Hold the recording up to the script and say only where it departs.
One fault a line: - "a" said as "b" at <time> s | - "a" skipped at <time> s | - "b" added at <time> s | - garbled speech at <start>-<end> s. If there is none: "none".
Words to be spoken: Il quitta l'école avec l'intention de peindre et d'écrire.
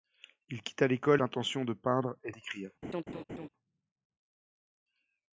- "avec" skipped at 1.2 s